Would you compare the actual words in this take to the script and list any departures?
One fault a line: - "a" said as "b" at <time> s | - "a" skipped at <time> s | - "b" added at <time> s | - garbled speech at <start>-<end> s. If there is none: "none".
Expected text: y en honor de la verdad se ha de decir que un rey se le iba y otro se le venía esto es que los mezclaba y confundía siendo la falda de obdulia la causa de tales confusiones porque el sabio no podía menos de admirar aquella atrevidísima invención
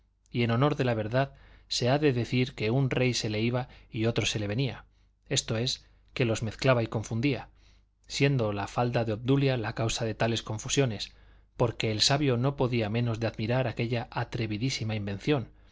none